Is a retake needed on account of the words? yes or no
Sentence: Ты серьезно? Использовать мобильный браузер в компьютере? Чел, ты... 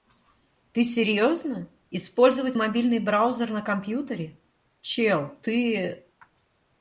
yes